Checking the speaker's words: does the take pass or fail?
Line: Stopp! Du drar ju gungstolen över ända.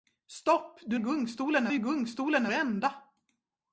fail